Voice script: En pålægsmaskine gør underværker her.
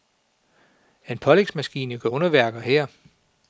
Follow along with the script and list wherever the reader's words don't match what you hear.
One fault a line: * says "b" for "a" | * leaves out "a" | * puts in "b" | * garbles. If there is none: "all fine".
all fine